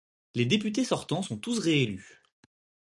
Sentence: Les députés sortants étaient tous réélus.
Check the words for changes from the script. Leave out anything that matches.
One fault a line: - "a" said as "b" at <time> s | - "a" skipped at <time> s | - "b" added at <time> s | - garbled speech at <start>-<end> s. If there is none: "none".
- "étaient" said as "sont" at 1.2 s